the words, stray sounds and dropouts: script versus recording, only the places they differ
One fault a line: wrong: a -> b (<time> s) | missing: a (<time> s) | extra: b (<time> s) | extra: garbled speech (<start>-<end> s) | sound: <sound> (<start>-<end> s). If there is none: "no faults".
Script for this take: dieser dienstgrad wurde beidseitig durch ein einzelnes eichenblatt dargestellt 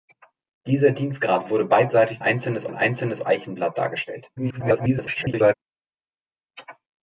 wrong: durch -> einzelnes (2.2 s)
extra: garbled speech (4.4-5.5 s)